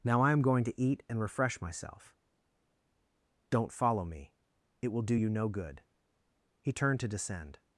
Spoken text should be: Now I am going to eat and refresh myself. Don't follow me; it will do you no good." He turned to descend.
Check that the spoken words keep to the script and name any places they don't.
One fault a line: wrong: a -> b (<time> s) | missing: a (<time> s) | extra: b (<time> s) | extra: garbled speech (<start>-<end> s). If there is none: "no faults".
no faults